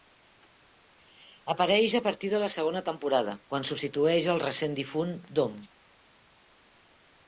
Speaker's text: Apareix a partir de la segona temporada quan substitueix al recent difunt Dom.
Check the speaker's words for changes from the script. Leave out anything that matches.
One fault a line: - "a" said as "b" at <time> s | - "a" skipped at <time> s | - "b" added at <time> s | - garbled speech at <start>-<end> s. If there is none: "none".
none